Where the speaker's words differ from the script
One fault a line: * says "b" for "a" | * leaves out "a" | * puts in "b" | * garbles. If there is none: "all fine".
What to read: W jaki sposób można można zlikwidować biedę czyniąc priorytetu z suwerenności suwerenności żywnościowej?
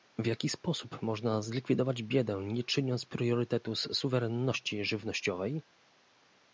* leaves out "można"
* puts in "nie"
* leaves out "suwerenności"